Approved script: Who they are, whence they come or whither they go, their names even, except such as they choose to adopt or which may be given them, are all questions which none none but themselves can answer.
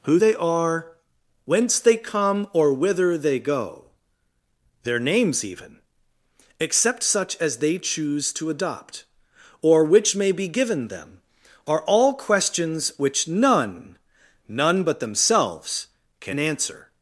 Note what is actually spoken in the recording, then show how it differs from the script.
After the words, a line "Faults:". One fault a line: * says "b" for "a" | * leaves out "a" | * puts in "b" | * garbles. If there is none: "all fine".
Who they are, whence they come or whither they go, their names even, except such as they choose to adopt or which may be given them, are all questions which none none but themselves can answer.
Faults:
all fine